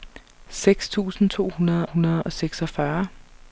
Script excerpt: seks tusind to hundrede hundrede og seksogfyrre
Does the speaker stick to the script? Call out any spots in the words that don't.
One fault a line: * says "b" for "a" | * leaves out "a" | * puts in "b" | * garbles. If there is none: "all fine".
all fine